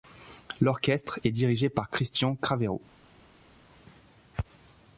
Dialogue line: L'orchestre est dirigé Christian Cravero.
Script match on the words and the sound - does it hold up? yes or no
no